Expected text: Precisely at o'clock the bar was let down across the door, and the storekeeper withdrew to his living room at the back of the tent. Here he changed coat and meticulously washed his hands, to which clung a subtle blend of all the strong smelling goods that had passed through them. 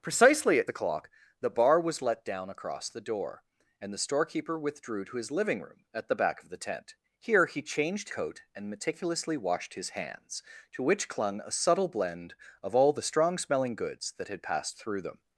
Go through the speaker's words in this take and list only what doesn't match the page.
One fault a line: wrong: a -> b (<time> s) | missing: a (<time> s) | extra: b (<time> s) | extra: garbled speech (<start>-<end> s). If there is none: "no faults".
no faults